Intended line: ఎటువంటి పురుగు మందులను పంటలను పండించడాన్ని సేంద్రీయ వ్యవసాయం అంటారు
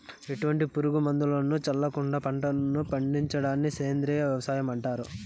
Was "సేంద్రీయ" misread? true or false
false